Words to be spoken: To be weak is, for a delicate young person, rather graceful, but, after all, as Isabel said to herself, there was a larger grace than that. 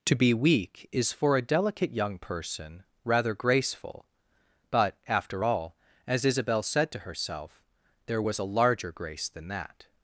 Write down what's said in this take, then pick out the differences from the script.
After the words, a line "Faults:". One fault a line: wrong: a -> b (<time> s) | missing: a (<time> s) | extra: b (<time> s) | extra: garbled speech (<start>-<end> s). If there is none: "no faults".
To be weak is, for a delicate young person, rather graceful, but, after all, as Isabel said to herself, there was a larger grace than that.
Faults:
no faults